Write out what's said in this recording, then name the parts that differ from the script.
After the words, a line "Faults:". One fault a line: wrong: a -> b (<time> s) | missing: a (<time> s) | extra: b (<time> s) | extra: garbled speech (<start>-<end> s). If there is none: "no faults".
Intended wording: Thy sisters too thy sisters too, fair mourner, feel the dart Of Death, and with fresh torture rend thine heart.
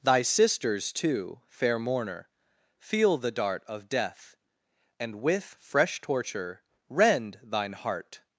Thy sisters too, fair mourner, feel the dart Of Death, and with fresh torture rend thine heart.
Faults:
missing: thy sisters too (1.4 s)